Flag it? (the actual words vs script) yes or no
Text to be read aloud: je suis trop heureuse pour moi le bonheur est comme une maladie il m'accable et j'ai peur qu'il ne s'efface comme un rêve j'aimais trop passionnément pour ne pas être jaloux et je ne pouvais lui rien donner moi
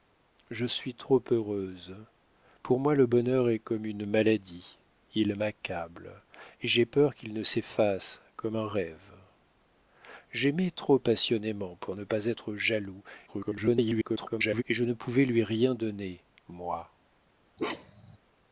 yes